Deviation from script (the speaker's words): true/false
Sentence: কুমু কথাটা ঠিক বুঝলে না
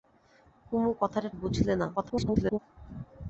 true